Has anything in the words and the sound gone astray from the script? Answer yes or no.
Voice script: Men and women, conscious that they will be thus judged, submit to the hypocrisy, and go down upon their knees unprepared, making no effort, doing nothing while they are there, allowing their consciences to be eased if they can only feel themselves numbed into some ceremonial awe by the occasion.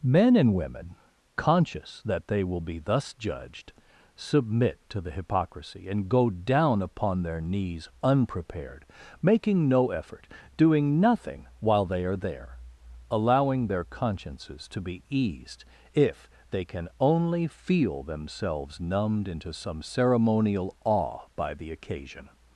no